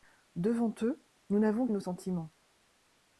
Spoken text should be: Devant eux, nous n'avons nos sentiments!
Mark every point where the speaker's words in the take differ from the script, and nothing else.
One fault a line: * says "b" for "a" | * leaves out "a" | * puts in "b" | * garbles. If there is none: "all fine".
all fine